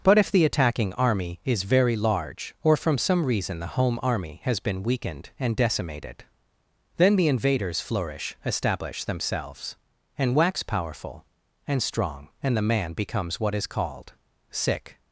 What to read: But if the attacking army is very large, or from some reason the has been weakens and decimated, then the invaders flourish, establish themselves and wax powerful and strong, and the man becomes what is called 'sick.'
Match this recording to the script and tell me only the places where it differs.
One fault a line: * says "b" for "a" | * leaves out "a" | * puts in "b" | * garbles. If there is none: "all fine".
* puts in "home army"
* says "weakened" for "weakens"